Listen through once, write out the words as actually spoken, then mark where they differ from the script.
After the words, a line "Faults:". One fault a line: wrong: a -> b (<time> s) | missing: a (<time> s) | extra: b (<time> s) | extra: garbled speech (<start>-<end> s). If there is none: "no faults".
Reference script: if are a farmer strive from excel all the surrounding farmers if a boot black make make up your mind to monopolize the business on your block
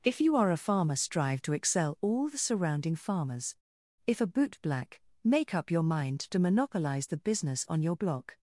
if you are a farmer strive to excel all the surrounding farmers if a boot black make up your mind to monopolize the business on your block
Faults:
extra: you (0.2 s)
wrong: from -> to (1.4 s)
missing: make (5.6 s)